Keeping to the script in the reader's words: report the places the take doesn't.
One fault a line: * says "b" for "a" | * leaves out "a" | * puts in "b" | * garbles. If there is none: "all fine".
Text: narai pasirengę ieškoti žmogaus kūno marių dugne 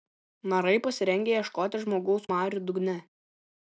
* leaves out "kūno"